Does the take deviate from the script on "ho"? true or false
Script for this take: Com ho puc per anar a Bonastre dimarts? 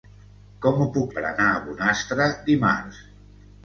false